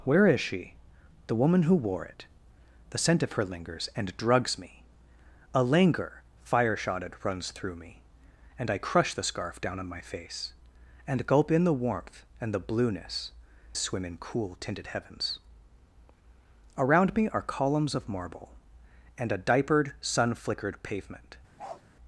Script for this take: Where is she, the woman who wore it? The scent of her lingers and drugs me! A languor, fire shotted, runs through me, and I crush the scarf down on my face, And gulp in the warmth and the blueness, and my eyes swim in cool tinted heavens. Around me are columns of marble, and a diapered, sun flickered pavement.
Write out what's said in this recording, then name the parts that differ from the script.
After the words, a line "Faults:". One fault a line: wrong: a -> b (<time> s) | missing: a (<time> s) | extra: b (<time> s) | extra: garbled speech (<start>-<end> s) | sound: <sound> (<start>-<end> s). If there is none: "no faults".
Where is she, the woman who wore it? The scent of her lingers and drugs me! A languor, fire shotted, runs through me, and I crush the scarf down on my face, And gulp in the warmth and the blueness, swim in cool tinted heavens. Around me are columns of marble, and a diapered, sun flickered pavement.
Faults:
missing: and my eyes (13.3 s)
sound: bark (21.6-21.8 s)